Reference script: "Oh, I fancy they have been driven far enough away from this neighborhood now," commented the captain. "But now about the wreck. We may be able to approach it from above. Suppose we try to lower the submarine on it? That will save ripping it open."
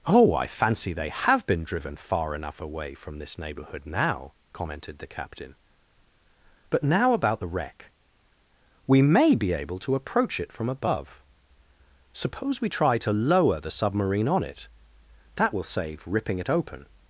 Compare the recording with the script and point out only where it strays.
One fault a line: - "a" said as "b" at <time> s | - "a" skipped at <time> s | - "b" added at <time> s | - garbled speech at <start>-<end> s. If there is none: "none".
none